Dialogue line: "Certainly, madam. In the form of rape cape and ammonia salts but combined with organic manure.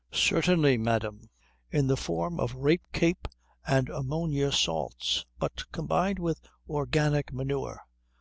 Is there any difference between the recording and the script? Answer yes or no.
no